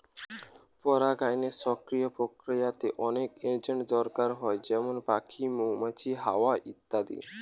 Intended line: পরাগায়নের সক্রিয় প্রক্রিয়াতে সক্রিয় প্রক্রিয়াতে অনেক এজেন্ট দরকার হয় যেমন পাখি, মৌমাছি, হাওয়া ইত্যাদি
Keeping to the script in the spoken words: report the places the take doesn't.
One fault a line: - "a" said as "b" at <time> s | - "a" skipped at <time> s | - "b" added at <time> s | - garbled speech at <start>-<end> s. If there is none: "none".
- "সক্রিয় প্রক্রিয়াতে" skipped at 2.9 s